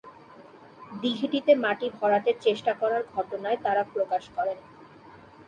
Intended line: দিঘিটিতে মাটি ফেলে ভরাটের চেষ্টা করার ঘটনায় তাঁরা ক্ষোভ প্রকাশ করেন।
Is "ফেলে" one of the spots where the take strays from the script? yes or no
yes